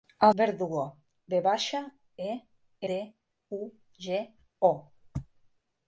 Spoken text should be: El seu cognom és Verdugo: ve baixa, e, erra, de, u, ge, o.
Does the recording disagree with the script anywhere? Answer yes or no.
yes